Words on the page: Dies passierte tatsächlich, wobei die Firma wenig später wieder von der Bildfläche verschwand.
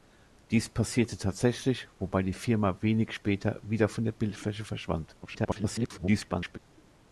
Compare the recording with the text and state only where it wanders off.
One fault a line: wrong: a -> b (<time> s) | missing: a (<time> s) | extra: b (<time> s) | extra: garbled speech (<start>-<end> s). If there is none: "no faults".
extra: garbled speech (5.2-6.6 s)